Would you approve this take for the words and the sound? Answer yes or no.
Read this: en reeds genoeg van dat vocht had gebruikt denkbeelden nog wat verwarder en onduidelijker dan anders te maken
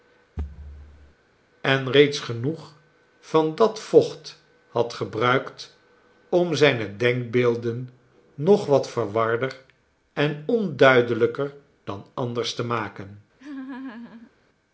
no